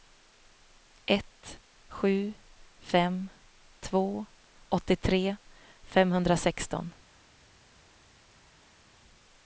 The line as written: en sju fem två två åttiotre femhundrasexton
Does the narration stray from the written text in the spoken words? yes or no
yes